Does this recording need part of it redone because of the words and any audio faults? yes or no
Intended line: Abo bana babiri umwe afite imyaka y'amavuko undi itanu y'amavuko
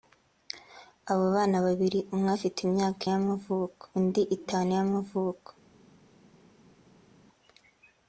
no